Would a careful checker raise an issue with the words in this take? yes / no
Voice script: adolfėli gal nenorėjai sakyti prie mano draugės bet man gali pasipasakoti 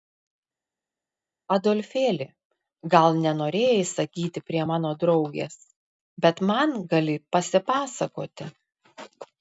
no